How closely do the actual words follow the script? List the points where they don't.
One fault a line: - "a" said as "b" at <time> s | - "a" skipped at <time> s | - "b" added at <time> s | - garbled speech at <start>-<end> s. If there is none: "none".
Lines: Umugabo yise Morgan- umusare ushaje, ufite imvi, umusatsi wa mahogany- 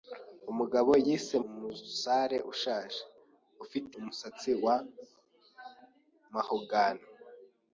- "Morgan" skipped at 1.4 s
- "imvi" skipped at 3.9 s